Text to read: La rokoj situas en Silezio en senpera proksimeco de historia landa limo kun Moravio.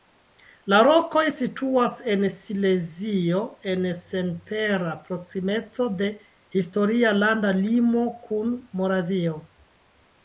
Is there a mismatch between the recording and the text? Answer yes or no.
no